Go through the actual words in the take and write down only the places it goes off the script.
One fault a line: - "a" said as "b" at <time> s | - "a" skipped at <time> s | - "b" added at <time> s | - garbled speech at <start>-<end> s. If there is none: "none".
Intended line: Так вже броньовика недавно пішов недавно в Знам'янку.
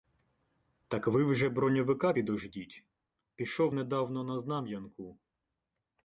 - "ви" added at 1.1 s
- "недавно" said as "підождіть" at 2.1 s
- "в" said as "на" at 4.2 s